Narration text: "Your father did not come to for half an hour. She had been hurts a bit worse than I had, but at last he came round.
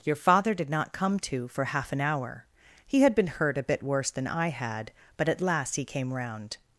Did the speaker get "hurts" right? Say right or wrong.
wrong